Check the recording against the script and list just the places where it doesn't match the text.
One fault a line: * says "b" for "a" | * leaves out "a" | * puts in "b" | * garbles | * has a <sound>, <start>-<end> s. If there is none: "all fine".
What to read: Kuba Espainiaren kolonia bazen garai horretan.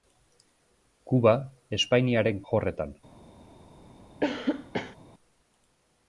* leaves out "kolonia bazen garai"
* has a cough, 4.2-5.0 s